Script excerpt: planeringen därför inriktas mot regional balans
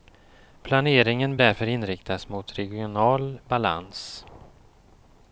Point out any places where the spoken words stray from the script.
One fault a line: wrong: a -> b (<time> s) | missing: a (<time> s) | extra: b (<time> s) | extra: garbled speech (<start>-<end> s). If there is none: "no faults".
no faults